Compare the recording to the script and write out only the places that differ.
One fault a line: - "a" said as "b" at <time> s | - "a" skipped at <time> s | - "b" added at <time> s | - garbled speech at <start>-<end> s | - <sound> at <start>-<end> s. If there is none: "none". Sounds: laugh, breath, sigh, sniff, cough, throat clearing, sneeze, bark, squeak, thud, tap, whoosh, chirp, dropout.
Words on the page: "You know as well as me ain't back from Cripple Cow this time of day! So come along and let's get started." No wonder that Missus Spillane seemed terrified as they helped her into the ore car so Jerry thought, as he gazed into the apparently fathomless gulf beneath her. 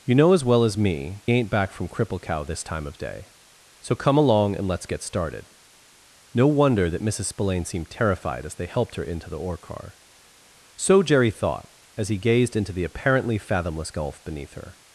none